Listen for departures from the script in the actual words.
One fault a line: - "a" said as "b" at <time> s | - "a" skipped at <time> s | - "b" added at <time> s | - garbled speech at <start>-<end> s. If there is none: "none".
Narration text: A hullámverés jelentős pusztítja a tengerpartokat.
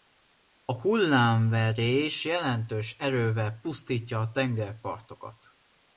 - "erővel" added at 3.0 s